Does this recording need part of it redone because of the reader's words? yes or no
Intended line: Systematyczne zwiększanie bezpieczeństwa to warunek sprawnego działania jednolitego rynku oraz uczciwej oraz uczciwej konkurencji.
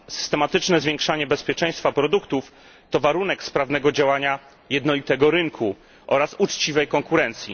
yes